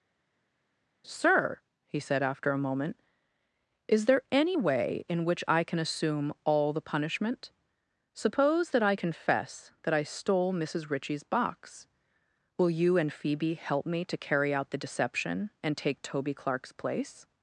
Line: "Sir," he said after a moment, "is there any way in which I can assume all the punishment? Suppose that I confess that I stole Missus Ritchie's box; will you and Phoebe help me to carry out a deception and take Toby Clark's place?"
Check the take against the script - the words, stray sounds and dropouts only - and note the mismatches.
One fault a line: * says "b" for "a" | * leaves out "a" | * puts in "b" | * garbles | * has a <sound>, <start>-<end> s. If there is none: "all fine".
* says "the" for "a"